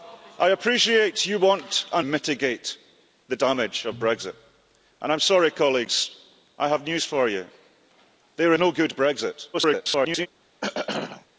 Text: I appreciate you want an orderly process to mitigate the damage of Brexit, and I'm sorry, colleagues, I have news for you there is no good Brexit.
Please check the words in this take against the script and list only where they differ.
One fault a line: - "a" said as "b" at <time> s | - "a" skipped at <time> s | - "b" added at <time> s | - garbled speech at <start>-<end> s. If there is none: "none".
- "orderly process to" skipped at 2.0 s
- "is" skipped at 8.5 s
- garbled speech at 9.5-10.3 s